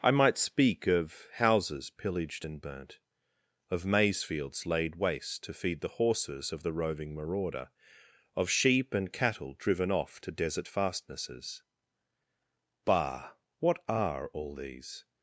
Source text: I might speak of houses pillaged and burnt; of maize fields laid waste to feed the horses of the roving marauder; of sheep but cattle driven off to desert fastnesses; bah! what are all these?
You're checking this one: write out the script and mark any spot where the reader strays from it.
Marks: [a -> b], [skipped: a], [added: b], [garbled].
I might speak of houses pillaged and burnt; of maize fields laid waste to feed the horses of the roving marauder; of sheep [but -> and] cattle driven off to desert fastnesses; bah! what are all these?